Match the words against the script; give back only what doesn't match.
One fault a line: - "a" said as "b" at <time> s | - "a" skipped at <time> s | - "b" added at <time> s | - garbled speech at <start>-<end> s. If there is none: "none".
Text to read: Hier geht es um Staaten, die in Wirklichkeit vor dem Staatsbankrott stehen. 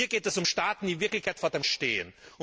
- "Staatsbankrott" skipped at 1.6 s